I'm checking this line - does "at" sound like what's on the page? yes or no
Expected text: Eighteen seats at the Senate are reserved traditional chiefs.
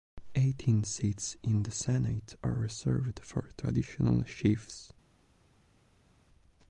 no